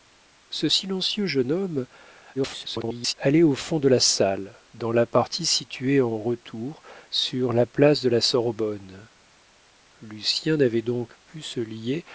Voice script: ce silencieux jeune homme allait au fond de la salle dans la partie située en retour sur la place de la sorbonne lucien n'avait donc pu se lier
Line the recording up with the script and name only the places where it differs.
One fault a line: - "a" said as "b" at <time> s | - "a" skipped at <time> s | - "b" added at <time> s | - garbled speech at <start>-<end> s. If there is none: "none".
- garbled speech at 2.3-3.1 s